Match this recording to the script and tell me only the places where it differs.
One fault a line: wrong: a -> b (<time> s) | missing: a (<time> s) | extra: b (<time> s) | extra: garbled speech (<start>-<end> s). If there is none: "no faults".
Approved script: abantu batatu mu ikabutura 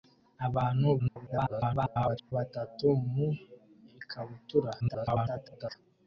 extra: garbled speech (1.0-2.3 s)
extra: garbled speech (4.8-5.8 s)